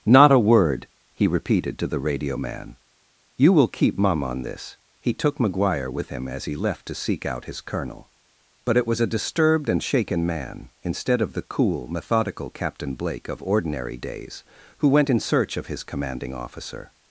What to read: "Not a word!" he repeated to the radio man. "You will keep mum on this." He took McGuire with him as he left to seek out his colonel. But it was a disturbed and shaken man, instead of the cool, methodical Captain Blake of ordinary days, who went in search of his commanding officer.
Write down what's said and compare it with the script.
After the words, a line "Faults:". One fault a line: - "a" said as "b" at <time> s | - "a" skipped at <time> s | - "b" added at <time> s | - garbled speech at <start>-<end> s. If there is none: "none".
"Not a word!" he repeated to the radio man. "You will keep mum on this." He took McGuire with him as he left to seek out his colonel. But it was a disturbed and shaken man, instead of the cool, methodical Captain Blake of ordinary days, who went in search of his commanding officer.
Faults:
none